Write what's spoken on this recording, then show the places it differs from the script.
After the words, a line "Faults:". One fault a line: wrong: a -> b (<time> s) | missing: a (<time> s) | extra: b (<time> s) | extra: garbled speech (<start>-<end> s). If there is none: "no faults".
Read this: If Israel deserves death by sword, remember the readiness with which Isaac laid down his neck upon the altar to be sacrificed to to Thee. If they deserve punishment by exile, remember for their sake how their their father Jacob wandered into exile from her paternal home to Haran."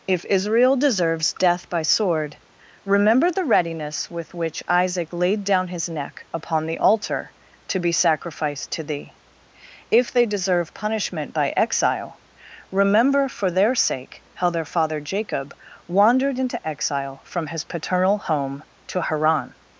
If Israel deserves death by sword, remember the readiness with which Isaac laid down his neck upon the altar to be sacrificed to Thee. If they deserve punishment by exile, remember for their sake how their father Jacob wandered into exile from his paternal home to Haran."
Faults:
missing: to (8.8 s)
missing: their (14.6 s)
wrong: her -> his (17.5 s)